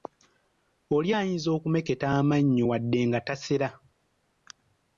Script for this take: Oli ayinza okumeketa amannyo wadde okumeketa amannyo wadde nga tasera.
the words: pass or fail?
fail